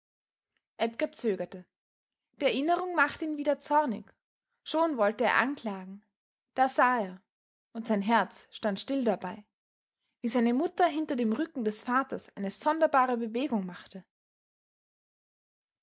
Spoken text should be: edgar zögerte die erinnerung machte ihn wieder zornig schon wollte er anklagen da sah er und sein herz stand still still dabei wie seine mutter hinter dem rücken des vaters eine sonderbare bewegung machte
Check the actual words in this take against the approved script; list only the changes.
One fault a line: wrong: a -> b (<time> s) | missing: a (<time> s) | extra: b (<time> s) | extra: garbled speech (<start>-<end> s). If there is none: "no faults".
missing: still (9.0 s)